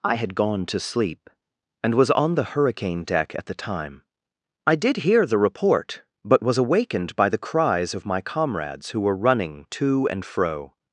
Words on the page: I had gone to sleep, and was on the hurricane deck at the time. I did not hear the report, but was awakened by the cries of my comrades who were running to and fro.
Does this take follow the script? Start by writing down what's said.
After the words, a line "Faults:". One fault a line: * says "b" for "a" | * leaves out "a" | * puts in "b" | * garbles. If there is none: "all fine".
I had gone to sleep, and was on the hurricane deck at the time. I did hear the report, but was awakened by the cries of my comrades who were running to and fro.
Faults:
* leaves out "not"